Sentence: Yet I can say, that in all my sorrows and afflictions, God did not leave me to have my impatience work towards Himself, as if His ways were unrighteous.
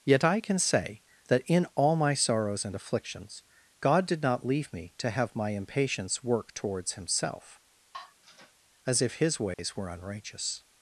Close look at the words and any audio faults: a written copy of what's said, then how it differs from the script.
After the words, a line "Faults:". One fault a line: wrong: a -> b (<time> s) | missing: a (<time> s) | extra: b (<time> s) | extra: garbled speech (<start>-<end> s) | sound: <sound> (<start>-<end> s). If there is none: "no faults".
Yet I can say, that in all my sorrows and afflictions, God did not leave me to have my impatience work towards Himself, as if His ways were unrighteous.
Faults:
sound: sigh (7.9-8.5 s)
sound: dropout (9.5-9.6 s)